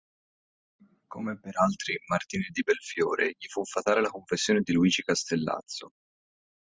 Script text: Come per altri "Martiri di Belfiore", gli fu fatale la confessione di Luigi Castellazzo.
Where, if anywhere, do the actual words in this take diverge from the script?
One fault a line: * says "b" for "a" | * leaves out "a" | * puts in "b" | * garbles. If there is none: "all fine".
all fine